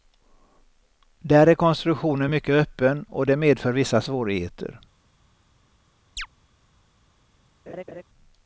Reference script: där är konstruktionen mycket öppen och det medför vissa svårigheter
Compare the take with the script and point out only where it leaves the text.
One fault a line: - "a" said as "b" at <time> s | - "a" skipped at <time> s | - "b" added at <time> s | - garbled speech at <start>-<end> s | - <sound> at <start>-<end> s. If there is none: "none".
- chirp at 6.2-6.3 s
- laugh at 7.7-8.0 s